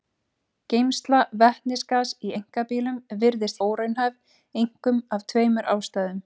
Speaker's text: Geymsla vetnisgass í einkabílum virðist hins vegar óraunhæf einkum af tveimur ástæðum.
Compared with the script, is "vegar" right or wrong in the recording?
wrong